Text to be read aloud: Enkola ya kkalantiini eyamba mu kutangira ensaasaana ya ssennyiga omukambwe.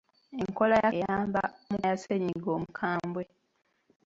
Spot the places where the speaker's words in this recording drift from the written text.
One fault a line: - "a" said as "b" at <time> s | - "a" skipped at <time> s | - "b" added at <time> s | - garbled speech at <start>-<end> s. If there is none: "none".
- "kkalantiini" skipped at 0.9 s
- "kutangira ensaasaana" skipped at 1.8 s